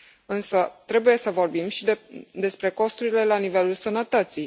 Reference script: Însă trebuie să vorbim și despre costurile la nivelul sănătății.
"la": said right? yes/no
yes